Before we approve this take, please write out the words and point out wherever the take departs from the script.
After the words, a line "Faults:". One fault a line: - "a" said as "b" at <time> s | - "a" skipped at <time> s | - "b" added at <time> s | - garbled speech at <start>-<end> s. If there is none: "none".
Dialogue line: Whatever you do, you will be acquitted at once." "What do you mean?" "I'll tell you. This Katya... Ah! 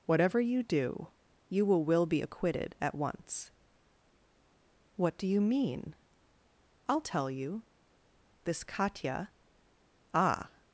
Whatever you do, you will will be acquitted at once." "What do you mean?" "I'll tell you. This Katya... Ah!
Faults:
- "will" added at 1.8 s